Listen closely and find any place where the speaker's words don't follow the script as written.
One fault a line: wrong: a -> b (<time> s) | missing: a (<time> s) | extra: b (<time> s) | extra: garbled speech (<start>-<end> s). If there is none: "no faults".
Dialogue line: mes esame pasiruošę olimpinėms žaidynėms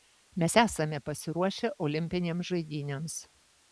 no faults